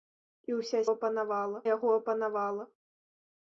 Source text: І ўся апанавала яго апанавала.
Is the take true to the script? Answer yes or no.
yes